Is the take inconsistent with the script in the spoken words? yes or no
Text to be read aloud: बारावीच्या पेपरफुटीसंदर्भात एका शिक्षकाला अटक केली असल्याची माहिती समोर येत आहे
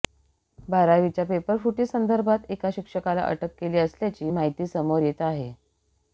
no